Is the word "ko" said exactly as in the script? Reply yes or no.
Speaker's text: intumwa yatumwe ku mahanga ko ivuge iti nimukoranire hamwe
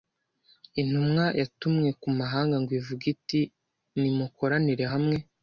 no